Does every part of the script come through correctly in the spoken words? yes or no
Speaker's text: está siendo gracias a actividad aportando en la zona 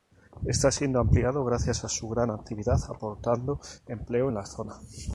no